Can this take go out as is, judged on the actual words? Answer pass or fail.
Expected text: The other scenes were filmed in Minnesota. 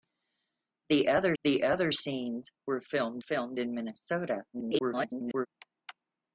fail